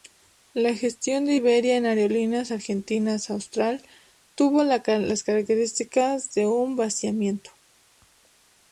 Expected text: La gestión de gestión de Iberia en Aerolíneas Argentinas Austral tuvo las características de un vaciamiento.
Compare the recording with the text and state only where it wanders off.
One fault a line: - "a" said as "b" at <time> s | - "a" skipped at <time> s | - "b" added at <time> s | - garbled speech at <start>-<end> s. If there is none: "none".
- "gestión de" skipped at 1.4 s